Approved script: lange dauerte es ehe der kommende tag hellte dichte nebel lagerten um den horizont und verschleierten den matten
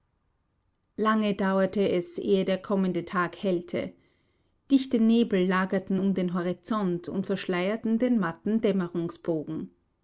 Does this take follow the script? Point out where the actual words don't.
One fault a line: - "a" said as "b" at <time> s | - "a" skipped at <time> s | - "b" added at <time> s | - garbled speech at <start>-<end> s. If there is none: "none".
none